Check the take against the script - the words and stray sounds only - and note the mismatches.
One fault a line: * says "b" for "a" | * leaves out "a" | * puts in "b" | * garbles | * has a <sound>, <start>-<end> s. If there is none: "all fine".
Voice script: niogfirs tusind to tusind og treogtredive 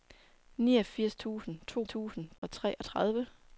* has a dropout, 2.4-2.4 s